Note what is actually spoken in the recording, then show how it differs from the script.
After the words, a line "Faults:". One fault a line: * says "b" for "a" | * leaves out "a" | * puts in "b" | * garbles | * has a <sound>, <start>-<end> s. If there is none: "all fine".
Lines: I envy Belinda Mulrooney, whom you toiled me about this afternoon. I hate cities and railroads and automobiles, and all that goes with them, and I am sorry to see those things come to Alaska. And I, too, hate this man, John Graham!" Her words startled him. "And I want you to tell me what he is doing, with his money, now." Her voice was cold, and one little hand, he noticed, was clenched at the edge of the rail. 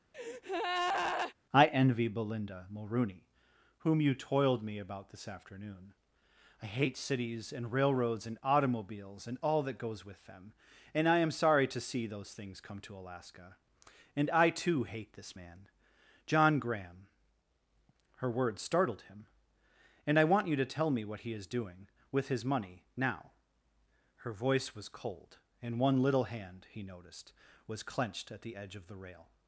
I envy Belinda Mulrooney, whom you toiled me about this afternoon. I hate cities and railroads and automobiles, and all that goes with them, and I am sorry to see those things come to Alaska. And I, too, hate this man, John Graham!" Her words startled him. "And I want you to tell me what he is doing, with his money, now." Her voice was cold, and one little hand, he noticed, was clenched at the edge of the rail.
Faults:
* has a breath, 0.1-1.3 s